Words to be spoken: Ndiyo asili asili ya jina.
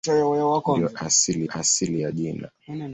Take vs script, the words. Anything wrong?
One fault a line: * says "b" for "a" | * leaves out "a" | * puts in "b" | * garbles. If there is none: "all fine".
all fine